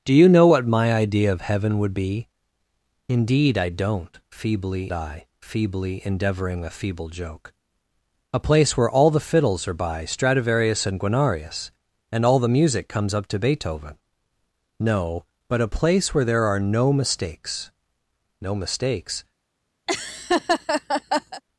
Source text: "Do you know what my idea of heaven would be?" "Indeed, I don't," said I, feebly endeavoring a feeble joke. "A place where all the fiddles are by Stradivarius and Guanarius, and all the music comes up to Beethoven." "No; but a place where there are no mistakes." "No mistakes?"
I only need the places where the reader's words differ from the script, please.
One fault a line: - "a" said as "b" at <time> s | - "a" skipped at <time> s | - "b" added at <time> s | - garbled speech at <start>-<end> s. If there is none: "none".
- "said" said as "feebly" at 4.3 s